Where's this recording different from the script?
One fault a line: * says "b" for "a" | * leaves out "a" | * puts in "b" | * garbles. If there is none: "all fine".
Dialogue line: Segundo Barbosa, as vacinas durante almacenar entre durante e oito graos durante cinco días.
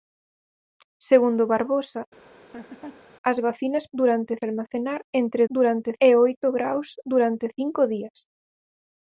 all fine